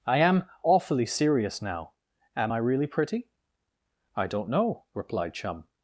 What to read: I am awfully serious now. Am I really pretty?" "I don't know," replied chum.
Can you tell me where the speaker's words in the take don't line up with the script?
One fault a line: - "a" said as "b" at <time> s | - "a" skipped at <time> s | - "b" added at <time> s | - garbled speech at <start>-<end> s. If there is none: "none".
none